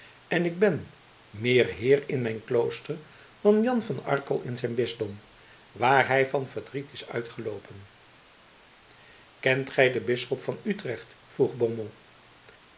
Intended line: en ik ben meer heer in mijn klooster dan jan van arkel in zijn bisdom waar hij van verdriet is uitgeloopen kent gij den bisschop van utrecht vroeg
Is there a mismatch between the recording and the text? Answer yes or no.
no